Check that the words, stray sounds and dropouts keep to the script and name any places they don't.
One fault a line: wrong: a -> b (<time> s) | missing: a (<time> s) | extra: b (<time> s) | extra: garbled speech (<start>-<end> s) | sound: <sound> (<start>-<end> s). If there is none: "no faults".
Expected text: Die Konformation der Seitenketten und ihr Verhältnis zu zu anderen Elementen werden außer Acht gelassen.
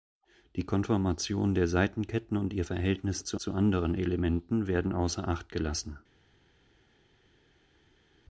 no faults